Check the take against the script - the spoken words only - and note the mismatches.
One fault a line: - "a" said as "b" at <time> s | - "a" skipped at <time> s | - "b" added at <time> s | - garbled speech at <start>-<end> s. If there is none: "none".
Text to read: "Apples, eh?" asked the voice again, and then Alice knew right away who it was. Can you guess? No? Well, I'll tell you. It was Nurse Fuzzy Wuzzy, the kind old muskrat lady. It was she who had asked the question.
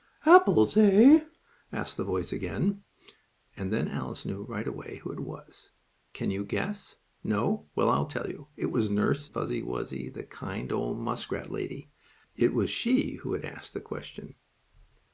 none